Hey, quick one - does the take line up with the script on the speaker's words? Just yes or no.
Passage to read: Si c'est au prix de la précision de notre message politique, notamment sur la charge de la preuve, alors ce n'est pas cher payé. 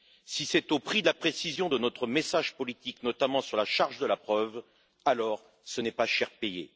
yes